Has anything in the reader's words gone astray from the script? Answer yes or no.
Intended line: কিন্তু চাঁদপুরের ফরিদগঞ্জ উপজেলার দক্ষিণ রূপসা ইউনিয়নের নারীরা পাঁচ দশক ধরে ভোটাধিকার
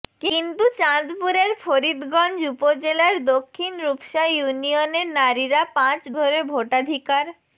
yes